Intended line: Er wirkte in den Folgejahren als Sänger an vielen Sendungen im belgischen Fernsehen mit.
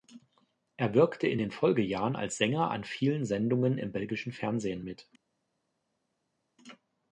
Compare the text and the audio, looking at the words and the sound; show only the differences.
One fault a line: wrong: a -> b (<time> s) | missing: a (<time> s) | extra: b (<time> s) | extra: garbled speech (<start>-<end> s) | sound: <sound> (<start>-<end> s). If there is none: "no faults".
no faults